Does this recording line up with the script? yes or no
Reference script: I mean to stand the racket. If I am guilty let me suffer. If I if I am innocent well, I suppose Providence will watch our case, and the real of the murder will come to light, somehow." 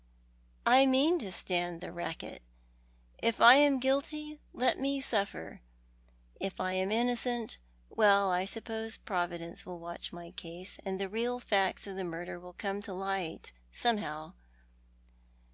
no